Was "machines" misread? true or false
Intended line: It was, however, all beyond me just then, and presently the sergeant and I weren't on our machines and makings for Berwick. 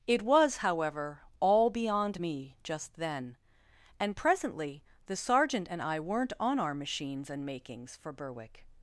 false